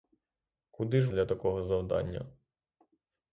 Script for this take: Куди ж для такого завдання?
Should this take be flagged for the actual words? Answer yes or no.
no